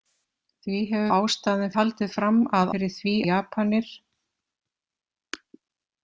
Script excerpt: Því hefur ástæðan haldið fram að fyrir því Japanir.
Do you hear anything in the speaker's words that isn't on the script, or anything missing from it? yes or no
no